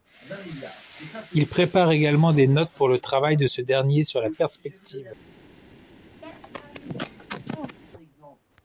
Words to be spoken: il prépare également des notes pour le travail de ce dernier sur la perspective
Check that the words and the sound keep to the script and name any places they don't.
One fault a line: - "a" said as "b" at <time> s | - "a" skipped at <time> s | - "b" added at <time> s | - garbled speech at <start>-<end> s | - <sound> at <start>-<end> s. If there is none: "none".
- sneeze at 6.2-7.8 s